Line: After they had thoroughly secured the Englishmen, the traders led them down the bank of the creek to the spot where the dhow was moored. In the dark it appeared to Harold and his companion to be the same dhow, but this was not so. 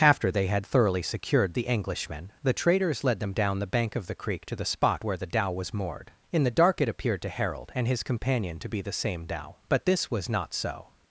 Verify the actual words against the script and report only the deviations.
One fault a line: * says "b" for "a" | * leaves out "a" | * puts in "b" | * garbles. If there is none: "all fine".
all fine